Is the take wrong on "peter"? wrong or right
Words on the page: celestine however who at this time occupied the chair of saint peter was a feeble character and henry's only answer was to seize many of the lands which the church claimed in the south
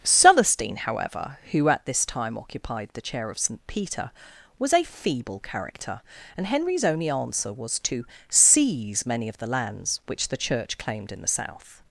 right